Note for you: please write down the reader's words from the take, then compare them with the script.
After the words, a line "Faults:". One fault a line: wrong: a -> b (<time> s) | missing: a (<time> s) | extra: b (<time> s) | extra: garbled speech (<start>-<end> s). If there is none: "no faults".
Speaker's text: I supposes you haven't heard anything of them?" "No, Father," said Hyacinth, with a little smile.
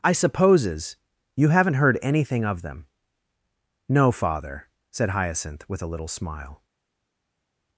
I supposes you haven't heard anything of them?" "No, Father," said Hyacinth, with a little smile.
Faults:
no faults